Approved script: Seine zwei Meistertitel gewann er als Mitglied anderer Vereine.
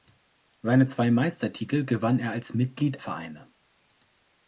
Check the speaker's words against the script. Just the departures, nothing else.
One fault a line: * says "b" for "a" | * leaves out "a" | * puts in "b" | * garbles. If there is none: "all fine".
* leaves out "anderer"